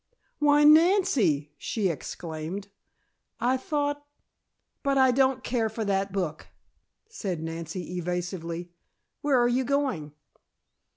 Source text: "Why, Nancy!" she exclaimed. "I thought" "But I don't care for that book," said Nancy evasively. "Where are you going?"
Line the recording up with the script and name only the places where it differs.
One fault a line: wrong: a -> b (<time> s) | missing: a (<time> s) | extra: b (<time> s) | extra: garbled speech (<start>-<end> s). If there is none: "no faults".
no faults